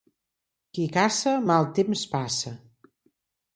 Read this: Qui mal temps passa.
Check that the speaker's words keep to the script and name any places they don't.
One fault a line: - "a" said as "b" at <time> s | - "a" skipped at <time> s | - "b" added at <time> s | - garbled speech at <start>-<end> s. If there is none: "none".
- "caça" added at 0.9 s